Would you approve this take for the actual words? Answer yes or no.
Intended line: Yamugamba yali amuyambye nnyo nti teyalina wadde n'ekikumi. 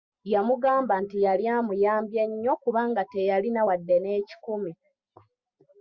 no